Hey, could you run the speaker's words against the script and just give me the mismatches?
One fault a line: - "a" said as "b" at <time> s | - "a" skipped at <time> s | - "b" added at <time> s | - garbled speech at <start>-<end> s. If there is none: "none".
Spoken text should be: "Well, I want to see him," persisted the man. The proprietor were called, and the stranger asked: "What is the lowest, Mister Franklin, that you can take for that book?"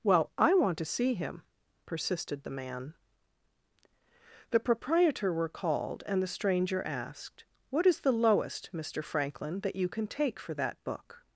none